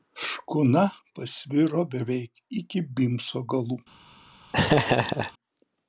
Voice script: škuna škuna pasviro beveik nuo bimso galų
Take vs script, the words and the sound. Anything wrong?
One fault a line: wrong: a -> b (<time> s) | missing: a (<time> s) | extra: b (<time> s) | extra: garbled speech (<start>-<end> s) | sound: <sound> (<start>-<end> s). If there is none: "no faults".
missing: škuna (0.8 s)
wrong: nuo -> iki (2.6 s)
sound: laugh (4.5-5.3 s)